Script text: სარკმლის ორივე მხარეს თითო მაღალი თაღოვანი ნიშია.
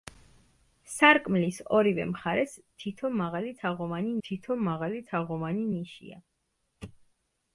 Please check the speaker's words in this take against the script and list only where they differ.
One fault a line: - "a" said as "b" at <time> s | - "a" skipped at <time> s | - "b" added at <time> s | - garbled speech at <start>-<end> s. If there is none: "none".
- "თითო მაღალი თაღოვანი" added at 4.3 s